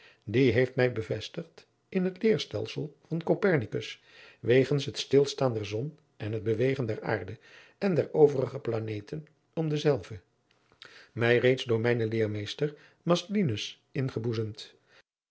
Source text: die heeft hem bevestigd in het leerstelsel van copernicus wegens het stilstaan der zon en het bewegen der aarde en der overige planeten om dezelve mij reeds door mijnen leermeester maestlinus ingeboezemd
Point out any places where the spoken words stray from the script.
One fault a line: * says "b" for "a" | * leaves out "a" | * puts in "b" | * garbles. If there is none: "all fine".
* says "mij" for "hem"